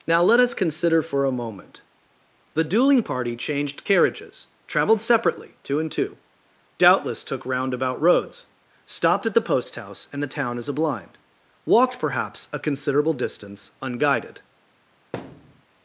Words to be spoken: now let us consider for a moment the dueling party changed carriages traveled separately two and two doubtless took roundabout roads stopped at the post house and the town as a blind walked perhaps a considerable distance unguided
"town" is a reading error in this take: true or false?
false